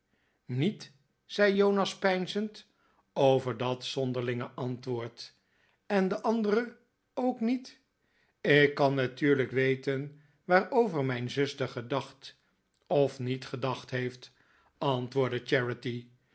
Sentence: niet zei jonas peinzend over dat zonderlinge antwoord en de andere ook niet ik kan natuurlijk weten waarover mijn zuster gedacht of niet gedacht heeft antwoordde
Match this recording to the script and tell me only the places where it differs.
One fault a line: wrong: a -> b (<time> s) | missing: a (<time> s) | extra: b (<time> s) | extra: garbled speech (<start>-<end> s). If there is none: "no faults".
no faults